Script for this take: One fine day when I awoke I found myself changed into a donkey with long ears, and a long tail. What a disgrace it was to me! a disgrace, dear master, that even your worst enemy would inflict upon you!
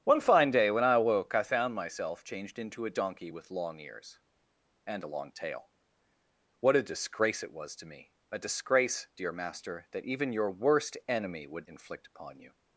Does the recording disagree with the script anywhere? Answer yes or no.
no